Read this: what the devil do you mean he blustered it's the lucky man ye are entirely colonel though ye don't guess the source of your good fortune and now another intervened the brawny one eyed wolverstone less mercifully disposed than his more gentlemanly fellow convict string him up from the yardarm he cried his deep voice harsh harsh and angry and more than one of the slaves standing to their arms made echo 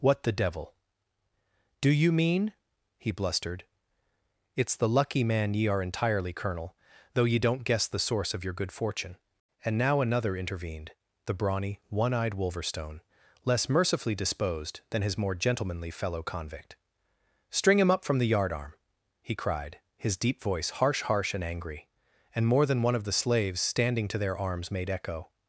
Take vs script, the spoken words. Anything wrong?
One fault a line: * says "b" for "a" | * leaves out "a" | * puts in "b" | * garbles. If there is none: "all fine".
all fine